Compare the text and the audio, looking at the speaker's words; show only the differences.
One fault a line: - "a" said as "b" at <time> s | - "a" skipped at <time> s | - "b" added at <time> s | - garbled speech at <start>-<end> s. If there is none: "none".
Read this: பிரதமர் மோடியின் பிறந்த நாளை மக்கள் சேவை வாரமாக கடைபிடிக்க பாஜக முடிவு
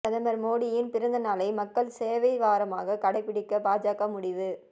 none